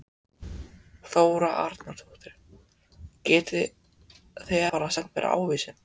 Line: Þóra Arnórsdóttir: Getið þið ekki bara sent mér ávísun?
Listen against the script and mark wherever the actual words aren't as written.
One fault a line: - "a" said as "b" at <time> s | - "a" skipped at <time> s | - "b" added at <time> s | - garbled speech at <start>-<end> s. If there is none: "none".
- "ekki" skipped at 4.7 s